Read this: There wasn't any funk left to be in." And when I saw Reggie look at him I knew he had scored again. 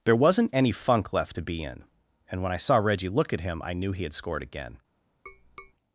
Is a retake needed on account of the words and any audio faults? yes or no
yes